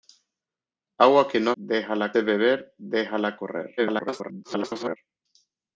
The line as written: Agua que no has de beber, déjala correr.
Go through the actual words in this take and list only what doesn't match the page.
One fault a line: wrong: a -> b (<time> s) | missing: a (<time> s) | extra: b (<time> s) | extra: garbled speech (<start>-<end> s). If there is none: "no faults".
wrong: has -> déjala (1.5 s)
extra: garbled speech (3.8-5.0 s)